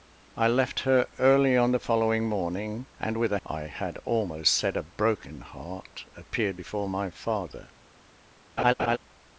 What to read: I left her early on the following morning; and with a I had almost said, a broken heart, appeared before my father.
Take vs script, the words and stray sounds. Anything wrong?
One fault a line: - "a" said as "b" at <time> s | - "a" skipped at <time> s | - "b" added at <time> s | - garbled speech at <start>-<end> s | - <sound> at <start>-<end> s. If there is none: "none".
- laugh at 8.6-9.0 s